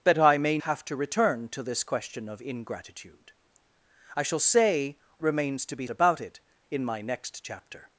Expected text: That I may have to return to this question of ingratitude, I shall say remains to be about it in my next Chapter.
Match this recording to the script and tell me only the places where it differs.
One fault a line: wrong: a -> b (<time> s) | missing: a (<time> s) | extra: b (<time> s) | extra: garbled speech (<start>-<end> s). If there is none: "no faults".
no faults